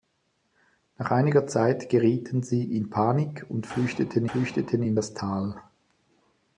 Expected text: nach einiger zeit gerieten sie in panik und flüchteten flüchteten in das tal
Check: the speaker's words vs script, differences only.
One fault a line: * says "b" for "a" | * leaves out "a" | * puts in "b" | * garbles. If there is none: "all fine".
all fine